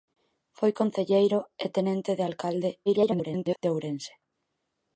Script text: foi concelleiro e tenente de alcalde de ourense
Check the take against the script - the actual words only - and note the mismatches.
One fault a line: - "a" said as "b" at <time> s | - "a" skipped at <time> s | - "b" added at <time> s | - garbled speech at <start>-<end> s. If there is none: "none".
- garbled speech at 2.9-3.6 s